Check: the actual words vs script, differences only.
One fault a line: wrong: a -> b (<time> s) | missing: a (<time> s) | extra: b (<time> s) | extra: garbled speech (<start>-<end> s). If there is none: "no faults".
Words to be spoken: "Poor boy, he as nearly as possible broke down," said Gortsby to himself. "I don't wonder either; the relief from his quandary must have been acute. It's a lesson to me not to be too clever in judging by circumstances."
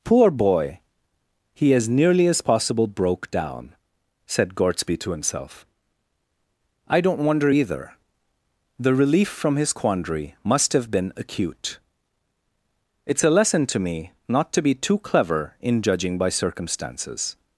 no faults